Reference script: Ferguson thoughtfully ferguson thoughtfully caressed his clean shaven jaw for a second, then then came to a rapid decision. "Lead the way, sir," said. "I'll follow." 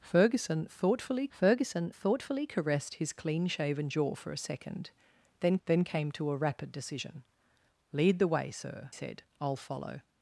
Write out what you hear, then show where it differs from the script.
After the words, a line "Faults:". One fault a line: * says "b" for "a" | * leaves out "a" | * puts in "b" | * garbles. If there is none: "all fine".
Ferguson thoughtfully ferguson thoughtfully caressed his clean shaven jaw for a second, then then came to a rapid decision. "Lead the way, sir," said. "I'll follow."
Faults:
all fine